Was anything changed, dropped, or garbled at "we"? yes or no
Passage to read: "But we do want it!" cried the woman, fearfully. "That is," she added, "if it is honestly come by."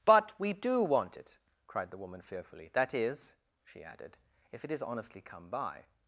no